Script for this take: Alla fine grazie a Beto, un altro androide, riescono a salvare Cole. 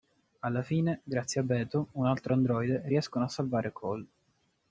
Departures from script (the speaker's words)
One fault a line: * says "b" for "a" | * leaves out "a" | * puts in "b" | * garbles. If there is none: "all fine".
all fine